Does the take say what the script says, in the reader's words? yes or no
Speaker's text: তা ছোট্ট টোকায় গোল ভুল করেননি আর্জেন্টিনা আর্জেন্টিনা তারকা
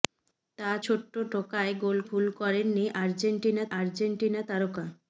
yes